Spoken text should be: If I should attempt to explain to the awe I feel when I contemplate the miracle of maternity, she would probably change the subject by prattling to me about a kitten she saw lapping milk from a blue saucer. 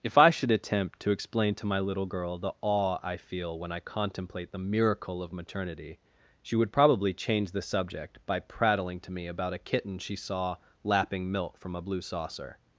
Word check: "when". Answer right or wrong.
right